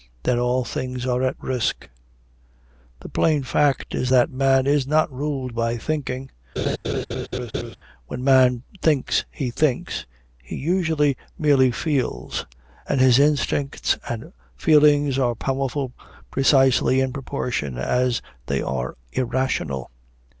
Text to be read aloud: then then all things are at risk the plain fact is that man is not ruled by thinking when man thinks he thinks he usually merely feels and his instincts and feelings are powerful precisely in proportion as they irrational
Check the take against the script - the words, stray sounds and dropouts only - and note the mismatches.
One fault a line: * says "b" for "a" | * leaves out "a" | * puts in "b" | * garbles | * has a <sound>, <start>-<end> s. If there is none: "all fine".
* leaves out "then"
* has a laugh, 6.6-7.8 s
* puts in "are"